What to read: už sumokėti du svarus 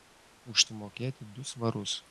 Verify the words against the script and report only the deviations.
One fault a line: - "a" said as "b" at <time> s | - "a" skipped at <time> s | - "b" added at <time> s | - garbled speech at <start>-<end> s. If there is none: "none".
none